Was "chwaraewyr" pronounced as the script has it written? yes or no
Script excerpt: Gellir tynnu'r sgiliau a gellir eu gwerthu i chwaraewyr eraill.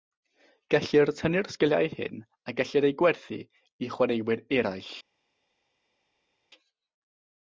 yes